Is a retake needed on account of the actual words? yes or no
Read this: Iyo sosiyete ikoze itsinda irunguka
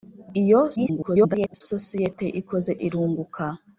yes